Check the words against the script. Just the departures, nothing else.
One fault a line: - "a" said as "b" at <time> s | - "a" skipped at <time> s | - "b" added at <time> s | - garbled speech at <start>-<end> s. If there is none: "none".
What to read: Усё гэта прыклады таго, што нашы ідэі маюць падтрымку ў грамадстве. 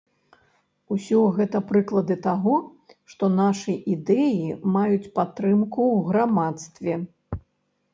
none